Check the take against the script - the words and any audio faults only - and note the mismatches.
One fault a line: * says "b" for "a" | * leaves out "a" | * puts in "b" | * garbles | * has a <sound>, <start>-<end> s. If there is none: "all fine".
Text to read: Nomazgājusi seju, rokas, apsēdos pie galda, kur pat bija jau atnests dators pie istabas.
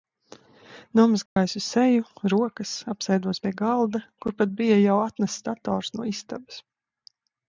* has a dropout, 1.3-1.4 s
* says "no" for "pie"